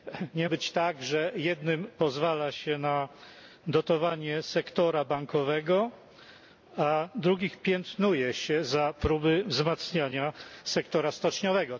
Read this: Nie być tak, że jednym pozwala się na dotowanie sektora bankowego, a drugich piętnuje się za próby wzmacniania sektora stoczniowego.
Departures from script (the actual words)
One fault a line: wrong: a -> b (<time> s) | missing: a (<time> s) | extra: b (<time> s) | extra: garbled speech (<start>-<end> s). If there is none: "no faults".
no faults